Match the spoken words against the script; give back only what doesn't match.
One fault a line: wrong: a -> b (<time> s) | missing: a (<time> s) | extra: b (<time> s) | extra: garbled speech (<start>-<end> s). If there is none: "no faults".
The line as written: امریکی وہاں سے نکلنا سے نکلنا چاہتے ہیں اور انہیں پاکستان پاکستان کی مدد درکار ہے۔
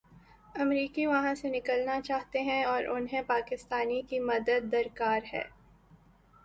missing: سے نکلنا (2.0 s)
missing: پاکستان (3.9 s)